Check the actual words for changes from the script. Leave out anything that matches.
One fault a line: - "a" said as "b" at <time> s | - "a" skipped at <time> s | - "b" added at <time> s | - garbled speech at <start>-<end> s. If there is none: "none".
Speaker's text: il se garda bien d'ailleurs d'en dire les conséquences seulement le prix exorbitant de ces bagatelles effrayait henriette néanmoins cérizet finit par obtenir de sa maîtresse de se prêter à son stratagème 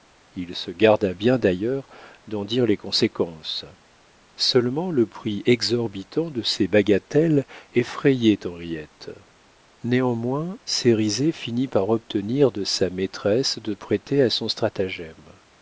- "se" skipped at 13.7 s